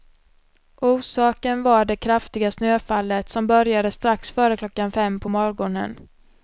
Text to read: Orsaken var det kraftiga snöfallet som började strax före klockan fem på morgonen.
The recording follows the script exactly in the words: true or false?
true